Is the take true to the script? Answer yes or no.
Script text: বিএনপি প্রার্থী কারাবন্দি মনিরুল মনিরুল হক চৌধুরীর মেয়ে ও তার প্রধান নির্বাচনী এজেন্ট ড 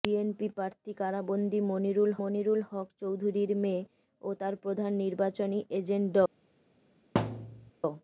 yes